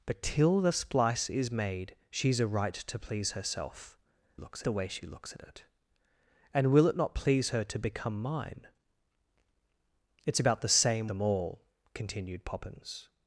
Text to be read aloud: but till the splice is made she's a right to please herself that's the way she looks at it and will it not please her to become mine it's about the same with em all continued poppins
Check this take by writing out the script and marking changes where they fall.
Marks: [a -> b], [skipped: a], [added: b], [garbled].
but till the splice is made she's a right to please herself [that's -> looks] the way she looks at it and will it not please her to become mine it's about the same [skipped: with] em all continued poppins